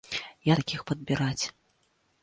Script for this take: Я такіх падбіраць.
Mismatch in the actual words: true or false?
false